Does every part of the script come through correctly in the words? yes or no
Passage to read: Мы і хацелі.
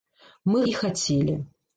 yes